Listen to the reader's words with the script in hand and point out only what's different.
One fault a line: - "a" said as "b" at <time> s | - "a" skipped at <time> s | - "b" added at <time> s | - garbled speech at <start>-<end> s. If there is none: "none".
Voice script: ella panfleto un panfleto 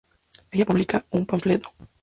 - "panfleto" said as "publica" at 0.6 s